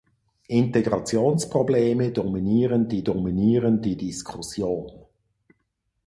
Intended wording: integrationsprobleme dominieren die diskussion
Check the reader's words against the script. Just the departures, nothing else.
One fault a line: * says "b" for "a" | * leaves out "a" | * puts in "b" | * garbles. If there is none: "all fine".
* puts in "dominieren die"